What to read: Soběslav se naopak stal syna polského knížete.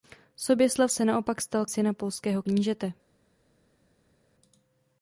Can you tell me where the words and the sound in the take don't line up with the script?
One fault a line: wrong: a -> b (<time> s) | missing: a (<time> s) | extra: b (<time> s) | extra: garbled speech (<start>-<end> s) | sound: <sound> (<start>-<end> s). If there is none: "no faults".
no faults